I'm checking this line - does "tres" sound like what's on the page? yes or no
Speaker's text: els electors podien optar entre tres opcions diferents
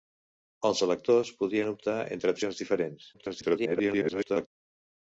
no